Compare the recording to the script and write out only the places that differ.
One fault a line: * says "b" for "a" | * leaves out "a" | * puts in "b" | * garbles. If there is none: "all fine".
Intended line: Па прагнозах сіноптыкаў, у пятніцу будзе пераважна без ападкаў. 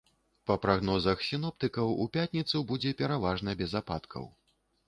all fine